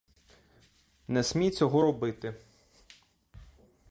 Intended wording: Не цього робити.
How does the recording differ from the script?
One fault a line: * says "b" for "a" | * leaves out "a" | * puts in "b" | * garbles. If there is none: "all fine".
* puts in "смій"